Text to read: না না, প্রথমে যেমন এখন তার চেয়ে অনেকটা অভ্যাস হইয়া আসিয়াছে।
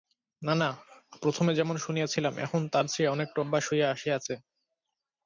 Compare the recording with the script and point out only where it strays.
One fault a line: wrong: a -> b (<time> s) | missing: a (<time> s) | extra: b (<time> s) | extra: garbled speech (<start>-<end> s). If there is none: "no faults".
extra: শুনিয়াছিলাম (1.8 s)